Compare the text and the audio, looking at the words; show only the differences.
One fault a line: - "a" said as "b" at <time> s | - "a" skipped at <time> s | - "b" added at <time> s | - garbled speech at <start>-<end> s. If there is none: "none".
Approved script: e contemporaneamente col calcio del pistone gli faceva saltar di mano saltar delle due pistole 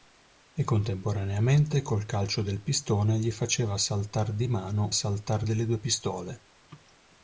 none